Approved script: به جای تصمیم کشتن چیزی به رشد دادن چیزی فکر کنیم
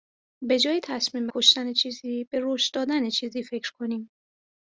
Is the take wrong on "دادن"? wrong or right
right